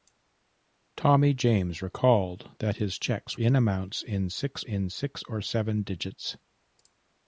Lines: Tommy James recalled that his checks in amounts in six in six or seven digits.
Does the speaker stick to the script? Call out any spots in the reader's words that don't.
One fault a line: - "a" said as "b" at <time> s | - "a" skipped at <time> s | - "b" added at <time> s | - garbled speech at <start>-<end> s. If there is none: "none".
none